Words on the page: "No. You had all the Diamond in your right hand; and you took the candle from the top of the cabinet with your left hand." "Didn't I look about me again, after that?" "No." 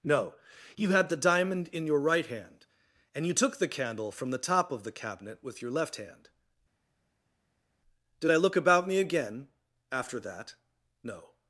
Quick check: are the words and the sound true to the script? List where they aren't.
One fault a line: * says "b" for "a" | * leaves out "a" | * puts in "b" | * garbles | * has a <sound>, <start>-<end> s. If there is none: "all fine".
* leaves out "all"
* says "Did" for "Didn't"